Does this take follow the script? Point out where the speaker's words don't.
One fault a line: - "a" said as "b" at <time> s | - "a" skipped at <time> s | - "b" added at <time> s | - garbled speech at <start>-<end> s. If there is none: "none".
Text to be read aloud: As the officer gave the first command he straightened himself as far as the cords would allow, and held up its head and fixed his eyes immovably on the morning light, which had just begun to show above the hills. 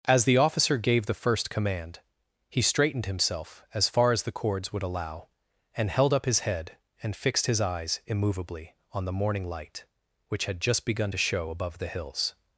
- "its" said as "his" at 6.3 s